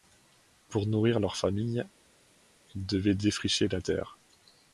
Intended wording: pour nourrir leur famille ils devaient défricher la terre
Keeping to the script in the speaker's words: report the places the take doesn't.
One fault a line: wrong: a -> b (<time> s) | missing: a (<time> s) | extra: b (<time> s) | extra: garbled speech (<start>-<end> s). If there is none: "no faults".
no faults